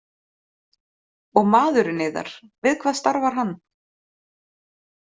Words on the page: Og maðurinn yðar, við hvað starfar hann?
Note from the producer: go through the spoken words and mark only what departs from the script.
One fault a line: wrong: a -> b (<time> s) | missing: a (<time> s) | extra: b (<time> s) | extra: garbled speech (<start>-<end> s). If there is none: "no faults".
no faults